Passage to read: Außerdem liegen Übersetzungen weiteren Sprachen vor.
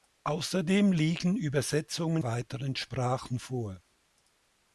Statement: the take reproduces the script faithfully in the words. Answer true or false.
true